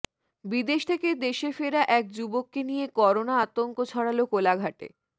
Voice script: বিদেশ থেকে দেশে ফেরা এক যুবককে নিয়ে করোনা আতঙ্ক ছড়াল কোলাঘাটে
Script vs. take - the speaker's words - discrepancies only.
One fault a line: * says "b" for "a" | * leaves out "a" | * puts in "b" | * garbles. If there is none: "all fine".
all fine